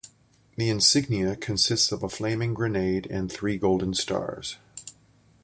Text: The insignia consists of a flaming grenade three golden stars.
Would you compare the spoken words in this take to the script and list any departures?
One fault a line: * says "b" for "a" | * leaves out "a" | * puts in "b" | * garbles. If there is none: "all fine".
* puts in "and"